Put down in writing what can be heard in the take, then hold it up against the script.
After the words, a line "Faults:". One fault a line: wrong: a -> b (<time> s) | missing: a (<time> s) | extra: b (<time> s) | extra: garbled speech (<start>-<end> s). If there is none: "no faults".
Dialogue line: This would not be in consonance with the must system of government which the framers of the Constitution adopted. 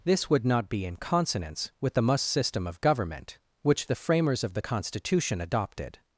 This would not be in consonance with the must system of government which the framers of the Constitution adopted.
Faults:
no faults